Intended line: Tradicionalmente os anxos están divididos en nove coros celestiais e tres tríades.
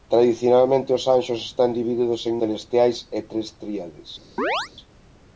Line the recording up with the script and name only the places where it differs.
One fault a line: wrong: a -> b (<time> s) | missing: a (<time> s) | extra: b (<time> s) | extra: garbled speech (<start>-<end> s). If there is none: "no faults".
missing: nove coros (2.4 s)